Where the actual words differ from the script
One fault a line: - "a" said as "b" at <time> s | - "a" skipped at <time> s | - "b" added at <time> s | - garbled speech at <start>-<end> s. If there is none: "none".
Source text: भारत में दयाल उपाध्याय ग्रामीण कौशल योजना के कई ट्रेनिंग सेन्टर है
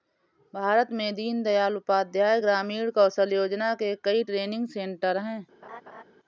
- "दीन" added at 1.1 s